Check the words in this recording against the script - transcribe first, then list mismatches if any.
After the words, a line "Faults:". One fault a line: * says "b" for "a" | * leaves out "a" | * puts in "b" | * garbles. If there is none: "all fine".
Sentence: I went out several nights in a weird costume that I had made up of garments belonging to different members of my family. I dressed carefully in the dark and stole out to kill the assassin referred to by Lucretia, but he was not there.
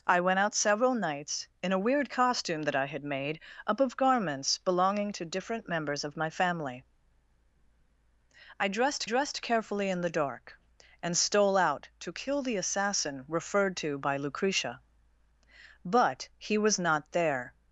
I went out several nights in a weird costume that I had made up of garments belonging to different members of my family. I dressed dressed carefully in the dark and stole out to kill the assassin referred to by Lucretia, but he was not there.
Faults:
* puts in "dressed"